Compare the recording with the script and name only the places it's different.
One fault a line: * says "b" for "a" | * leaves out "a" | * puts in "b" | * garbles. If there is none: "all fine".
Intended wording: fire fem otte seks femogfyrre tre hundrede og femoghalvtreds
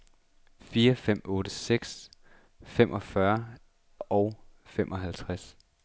* leaves out "tre hundrede"